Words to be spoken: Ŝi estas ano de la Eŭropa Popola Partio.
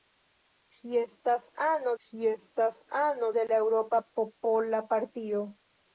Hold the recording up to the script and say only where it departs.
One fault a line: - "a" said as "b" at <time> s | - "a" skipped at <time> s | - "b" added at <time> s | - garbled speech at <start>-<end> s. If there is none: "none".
- "ŝi estas ano" added at 2.1 s